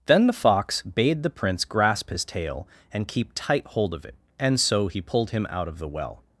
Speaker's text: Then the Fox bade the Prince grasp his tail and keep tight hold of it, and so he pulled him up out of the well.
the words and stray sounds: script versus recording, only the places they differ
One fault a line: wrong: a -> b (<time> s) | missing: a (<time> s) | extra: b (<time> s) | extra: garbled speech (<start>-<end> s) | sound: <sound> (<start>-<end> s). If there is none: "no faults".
missing: up (5.5 s)